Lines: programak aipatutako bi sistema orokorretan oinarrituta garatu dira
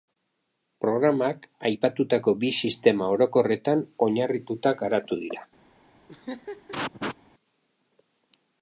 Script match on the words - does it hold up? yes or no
yes